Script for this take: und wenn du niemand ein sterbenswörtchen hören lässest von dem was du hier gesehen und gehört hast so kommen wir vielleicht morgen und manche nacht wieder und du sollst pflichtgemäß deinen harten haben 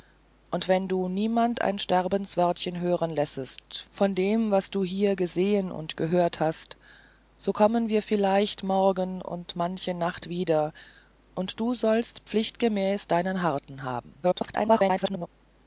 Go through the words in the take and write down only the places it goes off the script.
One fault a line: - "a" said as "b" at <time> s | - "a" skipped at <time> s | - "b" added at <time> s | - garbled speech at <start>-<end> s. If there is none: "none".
- garbled speech at 14.2-15.3 s